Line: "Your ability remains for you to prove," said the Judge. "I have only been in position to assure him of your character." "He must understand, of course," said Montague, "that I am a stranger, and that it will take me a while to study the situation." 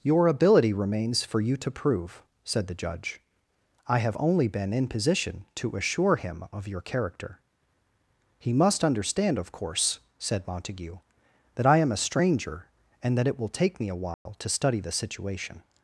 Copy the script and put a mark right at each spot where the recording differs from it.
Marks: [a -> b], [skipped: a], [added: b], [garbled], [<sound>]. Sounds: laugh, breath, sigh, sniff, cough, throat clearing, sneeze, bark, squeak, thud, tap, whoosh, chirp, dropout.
"Your ability remains for you to prove," said the Judge. "I have only been in position to assure him of your character." "He must understand, of course," said Montague, "that I am a stranger, and that it will take me a while [dropout] to study the situation."